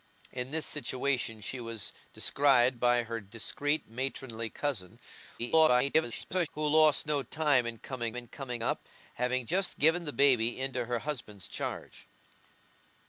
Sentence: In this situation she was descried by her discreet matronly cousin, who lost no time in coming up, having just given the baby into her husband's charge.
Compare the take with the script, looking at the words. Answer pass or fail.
fail